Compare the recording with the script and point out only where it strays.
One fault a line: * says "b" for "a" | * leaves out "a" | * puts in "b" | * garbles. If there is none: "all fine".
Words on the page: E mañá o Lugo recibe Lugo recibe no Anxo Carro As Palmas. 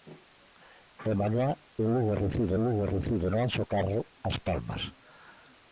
all fine